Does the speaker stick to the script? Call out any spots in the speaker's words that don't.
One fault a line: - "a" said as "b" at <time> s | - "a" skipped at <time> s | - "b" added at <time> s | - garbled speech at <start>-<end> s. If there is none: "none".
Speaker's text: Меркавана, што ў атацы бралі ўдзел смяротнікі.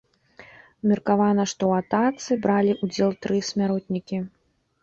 - "тры" added at 3.3 s